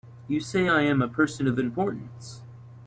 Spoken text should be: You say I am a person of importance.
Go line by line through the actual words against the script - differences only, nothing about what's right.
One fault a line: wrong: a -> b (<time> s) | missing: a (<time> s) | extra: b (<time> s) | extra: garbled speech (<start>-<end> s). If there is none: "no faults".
no faults